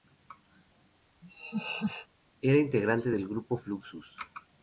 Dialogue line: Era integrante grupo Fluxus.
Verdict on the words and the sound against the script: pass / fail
fail